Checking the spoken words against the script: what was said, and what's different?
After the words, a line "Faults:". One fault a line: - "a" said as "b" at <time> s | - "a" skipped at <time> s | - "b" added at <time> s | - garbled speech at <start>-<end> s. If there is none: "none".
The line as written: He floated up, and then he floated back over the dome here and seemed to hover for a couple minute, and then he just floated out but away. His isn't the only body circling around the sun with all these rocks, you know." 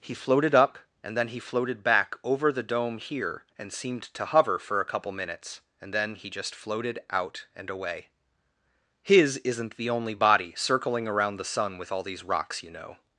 He floated up, and then he floated back over the dome here and seemed to hover for a couple minutes, and then he just floated out and away. His isn't the only body circling around the sun with all these rocks, you know."
Faults:
- "minute" said as "minutes" at 5.1 s
- "but" said as "and" at 7.5 s